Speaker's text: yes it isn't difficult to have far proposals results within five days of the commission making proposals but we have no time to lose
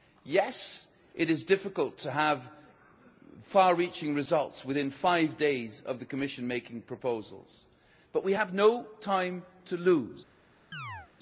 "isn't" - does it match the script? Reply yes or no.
no